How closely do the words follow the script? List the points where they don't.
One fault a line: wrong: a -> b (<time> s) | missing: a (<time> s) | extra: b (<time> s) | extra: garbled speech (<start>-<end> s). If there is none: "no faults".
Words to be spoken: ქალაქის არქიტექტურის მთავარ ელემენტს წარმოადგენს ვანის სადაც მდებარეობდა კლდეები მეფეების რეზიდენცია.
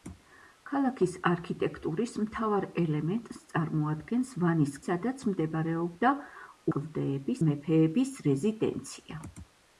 no faults